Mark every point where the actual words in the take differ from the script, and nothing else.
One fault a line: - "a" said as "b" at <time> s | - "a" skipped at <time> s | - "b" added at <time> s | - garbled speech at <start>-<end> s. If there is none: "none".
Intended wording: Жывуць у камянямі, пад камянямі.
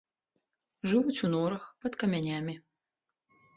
- "камянямі" said as "норах" at 1.3 s